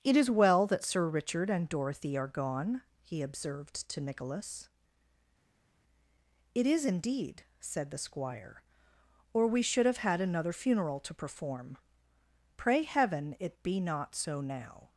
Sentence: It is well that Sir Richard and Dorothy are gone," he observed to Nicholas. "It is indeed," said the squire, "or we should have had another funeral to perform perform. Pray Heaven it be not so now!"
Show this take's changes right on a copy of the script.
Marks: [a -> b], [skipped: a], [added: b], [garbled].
It is well that Sir Richard and Dorothy are gone," he observed to Nicholas. "It is indeed," said the squire, "or we should have had another funeral to perform [skipped: perform.] Pray Heaven it be not so now!"